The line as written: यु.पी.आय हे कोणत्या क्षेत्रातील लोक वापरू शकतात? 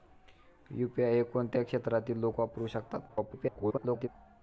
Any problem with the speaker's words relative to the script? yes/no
yes